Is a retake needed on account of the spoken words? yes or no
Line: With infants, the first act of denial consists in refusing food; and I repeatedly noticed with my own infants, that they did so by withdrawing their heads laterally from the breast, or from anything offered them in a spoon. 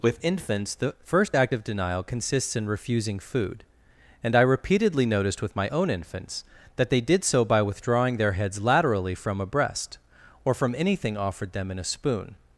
yes